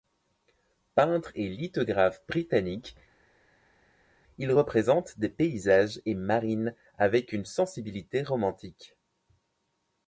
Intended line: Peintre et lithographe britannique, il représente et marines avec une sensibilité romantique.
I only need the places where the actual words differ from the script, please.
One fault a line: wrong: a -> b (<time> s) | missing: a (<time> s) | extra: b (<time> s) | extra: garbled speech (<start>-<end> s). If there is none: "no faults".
extra: des paysages (5.2 s)